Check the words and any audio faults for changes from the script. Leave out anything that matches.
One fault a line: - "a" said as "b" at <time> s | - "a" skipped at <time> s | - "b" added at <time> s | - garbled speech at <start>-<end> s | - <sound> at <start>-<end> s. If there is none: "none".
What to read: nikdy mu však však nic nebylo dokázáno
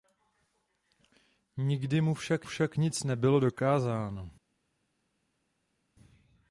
none